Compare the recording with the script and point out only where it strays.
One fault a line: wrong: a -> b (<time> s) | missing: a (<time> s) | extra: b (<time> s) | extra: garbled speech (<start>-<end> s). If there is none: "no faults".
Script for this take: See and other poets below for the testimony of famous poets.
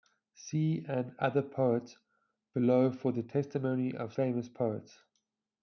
no faults